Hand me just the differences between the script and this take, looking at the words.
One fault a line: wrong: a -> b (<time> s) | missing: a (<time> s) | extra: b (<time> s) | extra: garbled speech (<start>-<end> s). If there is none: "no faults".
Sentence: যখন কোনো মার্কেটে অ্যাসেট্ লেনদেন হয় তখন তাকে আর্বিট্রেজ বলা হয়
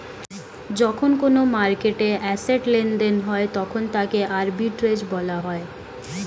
no faults